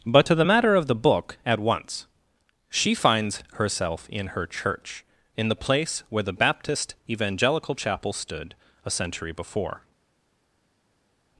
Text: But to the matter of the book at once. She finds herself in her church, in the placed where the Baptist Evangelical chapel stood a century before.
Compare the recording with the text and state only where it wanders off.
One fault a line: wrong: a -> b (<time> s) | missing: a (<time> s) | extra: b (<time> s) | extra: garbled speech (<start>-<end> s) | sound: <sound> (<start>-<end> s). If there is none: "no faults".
wrong: placed -> place (5.5 s)